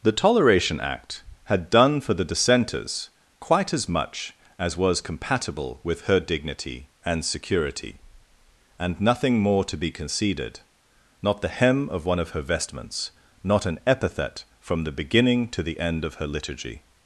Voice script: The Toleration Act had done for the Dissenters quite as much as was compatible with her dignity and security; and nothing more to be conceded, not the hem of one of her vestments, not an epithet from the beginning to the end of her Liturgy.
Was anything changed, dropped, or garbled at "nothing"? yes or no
no